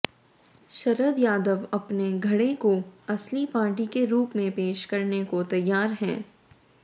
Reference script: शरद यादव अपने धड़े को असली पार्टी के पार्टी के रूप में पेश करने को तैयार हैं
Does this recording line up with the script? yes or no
no